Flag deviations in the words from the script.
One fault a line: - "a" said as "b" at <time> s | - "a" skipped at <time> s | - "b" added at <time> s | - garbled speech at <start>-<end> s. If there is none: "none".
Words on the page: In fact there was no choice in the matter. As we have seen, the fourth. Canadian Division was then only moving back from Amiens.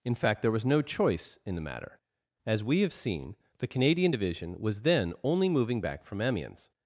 - "fourth" skipped at 3.7 s